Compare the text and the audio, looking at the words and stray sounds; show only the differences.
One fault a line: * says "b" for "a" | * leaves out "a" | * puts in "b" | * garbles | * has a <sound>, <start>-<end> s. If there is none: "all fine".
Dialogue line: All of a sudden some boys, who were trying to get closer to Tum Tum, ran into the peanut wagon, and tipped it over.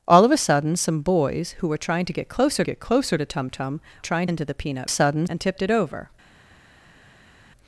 * puts in "get closer"
* says "trying" for "ran"
* says "sudden" for "wagon"